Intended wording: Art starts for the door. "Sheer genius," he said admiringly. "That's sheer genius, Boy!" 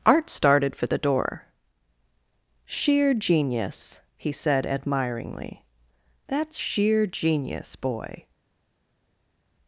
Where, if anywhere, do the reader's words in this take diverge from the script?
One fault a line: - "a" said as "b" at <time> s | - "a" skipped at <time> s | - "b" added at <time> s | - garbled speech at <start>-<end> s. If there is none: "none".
- "starts" said as "started" at 0.3 s